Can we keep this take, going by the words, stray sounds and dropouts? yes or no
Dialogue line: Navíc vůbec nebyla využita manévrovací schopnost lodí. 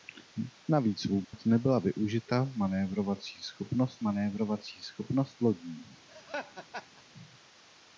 no